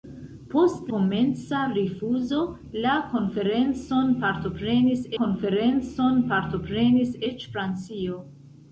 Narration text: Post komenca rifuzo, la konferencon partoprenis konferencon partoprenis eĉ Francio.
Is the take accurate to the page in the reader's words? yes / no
yes